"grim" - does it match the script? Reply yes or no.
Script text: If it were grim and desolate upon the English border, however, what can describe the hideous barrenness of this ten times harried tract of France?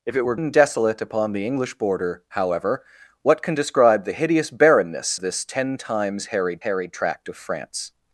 no